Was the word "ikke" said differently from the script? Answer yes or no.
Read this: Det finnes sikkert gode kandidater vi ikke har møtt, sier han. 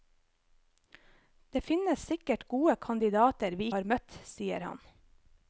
yes